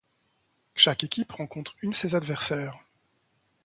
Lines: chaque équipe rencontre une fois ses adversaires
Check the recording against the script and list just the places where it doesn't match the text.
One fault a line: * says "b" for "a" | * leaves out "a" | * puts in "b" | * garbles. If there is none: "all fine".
* leaves out "fois"